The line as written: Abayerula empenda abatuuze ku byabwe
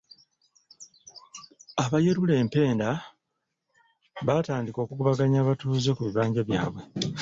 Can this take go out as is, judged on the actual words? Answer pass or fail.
fail